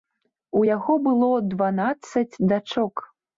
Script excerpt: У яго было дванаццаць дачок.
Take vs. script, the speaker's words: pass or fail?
pass